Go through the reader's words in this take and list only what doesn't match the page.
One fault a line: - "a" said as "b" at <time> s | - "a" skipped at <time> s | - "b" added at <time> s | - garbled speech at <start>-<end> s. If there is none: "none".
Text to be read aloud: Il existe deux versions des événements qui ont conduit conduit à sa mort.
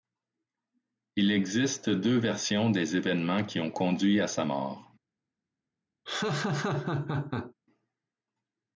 - "conduit" skipped at 4.2 s